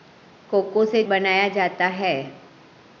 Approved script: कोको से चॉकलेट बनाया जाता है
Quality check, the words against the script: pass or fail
fail